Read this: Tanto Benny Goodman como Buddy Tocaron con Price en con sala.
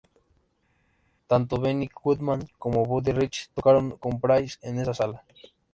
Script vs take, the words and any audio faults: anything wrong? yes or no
yes